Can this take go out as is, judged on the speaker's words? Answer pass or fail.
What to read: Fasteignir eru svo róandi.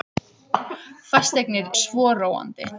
fail